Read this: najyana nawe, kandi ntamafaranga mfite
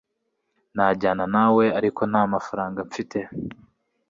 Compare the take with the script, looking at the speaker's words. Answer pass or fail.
fail